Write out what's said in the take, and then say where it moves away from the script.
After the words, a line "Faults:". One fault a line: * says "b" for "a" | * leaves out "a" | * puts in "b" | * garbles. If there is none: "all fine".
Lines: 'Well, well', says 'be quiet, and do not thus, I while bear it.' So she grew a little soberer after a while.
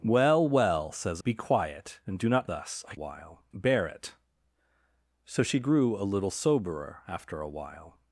'Well, well', says 'be quiet, and do not thus, I while bear it.' So she grew a little soberer after a while.
Faults:
all fine